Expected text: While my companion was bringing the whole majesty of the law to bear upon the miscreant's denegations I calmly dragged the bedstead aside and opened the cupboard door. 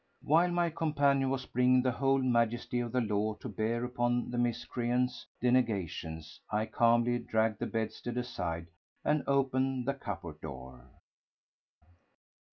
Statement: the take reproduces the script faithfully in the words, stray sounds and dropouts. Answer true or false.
true